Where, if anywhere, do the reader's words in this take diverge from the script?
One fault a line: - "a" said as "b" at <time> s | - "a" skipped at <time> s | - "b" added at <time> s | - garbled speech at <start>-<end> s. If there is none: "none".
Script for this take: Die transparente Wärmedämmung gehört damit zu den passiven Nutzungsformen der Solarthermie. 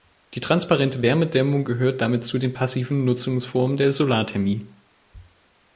none